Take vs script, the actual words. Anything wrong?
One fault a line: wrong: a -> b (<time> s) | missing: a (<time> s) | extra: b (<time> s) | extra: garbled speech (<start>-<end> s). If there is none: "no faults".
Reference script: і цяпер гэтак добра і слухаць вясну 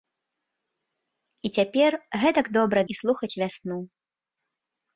no faults